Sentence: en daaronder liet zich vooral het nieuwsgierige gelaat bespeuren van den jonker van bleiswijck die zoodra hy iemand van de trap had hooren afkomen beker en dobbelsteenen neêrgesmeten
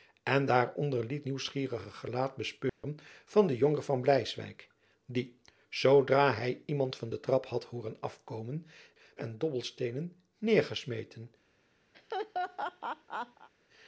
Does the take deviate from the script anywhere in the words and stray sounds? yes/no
yes